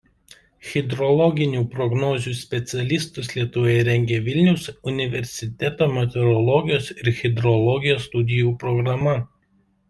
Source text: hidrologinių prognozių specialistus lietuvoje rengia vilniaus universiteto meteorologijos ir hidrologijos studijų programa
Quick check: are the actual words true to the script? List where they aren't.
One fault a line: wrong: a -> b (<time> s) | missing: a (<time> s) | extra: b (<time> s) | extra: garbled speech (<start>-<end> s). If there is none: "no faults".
no faults